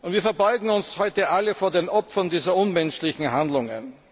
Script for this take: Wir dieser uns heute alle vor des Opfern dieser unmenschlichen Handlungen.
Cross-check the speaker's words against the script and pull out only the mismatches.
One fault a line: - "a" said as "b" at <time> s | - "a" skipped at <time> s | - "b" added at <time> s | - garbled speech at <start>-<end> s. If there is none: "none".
- "dieser" said as "verbeugen" at 0.2 s
- "des" said as "den" at 1.7 s